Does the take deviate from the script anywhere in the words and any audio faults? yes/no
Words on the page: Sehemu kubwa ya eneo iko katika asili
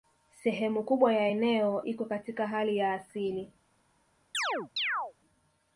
yes